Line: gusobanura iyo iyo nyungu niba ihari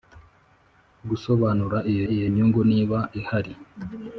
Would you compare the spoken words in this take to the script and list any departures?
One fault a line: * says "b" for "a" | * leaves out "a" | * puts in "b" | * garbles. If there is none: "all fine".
all fine